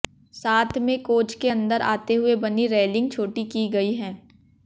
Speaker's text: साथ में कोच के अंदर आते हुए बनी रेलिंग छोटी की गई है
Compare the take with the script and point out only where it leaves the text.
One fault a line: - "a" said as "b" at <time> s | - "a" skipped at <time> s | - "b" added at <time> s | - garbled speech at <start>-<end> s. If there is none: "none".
none